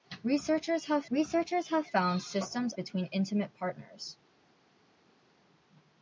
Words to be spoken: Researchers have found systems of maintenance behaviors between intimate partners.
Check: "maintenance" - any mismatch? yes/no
yes